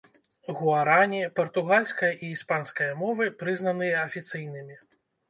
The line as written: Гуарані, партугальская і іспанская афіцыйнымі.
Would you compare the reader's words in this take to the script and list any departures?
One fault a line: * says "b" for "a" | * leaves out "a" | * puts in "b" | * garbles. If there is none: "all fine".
* puts in "мовы прызнаныя"